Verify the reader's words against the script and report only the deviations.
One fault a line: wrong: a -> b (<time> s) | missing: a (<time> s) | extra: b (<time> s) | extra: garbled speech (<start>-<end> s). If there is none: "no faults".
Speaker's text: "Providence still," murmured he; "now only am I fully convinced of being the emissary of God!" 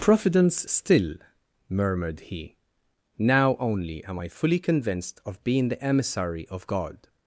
no faults